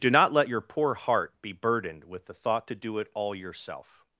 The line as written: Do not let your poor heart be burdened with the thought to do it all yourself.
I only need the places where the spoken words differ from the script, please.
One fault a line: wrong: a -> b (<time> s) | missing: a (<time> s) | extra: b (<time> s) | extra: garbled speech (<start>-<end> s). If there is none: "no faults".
no faults